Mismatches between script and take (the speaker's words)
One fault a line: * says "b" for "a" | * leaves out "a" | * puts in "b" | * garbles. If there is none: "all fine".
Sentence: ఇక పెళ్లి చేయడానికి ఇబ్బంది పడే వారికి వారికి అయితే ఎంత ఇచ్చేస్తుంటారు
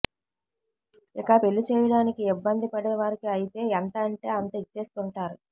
* leaves out "వారికి"
* puts in "అంటే అంత"